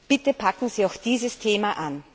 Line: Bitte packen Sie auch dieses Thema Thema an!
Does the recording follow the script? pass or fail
fail